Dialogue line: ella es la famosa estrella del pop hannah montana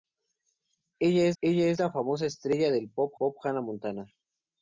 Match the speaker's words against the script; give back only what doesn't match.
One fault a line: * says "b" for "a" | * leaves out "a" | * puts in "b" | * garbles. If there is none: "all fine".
* puts in "ella es"
* puts in "pop"